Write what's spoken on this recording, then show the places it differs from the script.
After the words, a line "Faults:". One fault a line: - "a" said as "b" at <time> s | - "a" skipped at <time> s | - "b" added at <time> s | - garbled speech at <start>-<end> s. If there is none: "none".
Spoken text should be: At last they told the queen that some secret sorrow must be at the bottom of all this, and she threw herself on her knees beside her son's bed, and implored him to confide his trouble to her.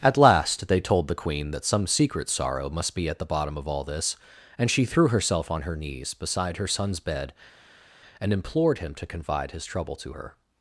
At last they told the queen that some secret sorrow must be at the bottom of all this, and she threw herself on her knees beside her son's bed, and implored him to confide his trouble to her.
Faults:
none